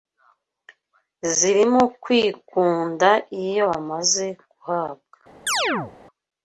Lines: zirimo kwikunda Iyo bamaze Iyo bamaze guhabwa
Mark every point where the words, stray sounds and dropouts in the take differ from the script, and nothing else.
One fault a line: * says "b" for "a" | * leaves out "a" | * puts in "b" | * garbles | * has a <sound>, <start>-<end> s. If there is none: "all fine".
* leaves out "Iyo bamaze"
* has a chirp, 5.5-5.9 s